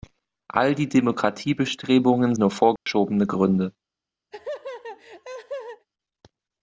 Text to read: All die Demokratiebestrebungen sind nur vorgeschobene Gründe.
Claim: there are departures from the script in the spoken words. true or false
true